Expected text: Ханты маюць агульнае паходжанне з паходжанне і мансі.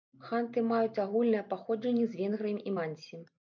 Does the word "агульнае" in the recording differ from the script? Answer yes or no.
no